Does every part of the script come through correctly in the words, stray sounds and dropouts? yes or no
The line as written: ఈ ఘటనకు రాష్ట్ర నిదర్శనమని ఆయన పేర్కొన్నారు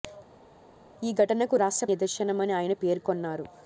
yes